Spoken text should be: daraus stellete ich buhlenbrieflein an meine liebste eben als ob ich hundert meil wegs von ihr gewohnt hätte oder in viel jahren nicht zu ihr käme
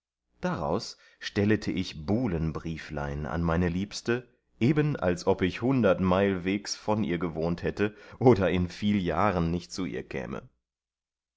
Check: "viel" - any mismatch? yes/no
no